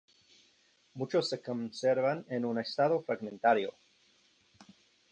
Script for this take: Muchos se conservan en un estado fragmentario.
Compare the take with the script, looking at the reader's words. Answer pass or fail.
pass